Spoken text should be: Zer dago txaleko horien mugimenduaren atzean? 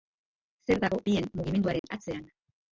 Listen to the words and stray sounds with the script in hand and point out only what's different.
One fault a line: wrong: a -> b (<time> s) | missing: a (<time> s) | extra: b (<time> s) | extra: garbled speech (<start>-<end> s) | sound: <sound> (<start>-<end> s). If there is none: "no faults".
missing: txaleko (1.0 s)
sound: dropout (1.8-1.8 s)